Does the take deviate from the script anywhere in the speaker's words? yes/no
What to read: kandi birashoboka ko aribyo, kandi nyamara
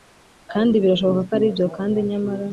no